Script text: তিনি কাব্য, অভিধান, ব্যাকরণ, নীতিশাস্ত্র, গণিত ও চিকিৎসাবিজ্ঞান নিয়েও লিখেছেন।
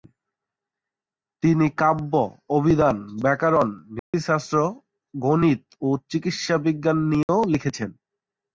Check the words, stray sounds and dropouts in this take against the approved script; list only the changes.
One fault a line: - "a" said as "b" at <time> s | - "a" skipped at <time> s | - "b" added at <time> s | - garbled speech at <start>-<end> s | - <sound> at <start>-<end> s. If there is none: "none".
- dropout at 4.0-4.1 s
- dropout at 7.2-7.3 s